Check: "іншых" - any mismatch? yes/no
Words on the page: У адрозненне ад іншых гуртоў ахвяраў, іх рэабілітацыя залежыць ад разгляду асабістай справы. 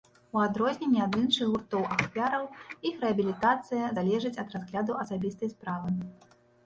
no